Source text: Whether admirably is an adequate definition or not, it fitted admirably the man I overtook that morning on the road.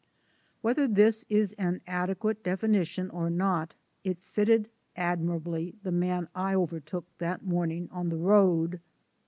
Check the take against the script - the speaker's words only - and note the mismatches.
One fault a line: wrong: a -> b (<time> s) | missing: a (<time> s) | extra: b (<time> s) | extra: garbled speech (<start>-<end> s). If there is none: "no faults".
wrong: admirably -> this (0.9 s)